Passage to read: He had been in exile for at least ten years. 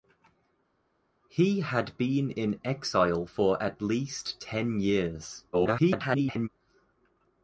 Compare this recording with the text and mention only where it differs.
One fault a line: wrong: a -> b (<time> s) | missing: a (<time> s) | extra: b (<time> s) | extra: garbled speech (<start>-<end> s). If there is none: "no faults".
extra: garbled speech (5.5-6.5 s)